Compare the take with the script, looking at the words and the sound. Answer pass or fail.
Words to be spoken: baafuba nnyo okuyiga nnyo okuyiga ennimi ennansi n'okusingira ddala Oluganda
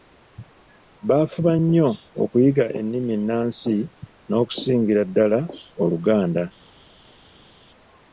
fail